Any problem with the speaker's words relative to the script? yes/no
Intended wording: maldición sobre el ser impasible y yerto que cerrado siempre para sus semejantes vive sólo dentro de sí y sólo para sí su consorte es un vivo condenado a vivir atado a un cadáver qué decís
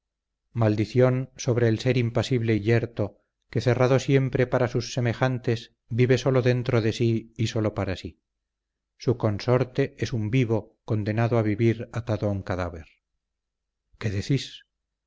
no